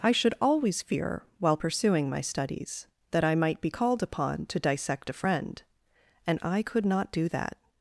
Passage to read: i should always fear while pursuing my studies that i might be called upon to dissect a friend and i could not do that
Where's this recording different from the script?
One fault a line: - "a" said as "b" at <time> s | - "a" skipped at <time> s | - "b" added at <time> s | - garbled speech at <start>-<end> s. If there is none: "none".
none